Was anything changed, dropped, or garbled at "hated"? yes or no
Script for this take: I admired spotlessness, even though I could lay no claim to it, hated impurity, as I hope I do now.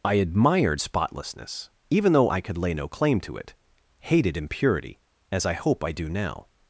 no